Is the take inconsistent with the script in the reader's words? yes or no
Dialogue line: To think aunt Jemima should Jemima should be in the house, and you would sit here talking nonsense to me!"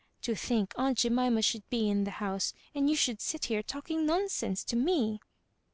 yes